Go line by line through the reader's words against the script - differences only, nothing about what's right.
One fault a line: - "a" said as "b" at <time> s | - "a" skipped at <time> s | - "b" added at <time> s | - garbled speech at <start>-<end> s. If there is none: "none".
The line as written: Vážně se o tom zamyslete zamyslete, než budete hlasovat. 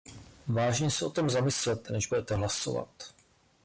- "zamyslete" skipped at 1.9 s